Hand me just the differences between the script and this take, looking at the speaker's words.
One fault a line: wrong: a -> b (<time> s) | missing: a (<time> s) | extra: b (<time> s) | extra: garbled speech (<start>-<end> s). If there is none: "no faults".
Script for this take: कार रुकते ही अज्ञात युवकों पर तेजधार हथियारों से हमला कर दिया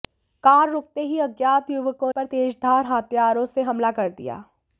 no faults